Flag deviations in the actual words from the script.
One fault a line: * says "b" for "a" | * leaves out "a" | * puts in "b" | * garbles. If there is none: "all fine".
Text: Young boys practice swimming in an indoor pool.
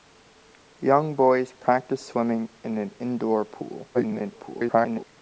* garbles